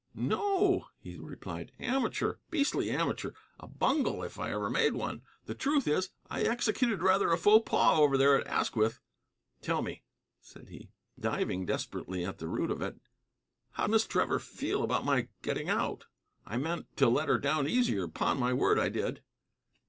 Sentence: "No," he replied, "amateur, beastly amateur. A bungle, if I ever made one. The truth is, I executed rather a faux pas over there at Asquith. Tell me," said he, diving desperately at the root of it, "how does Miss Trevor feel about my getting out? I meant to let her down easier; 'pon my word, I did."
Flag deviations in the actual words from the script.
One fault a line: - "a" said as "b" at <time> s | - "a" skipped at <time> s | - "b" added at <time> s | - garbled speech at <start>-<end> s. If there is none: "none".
- "does" skipped at 13.8 s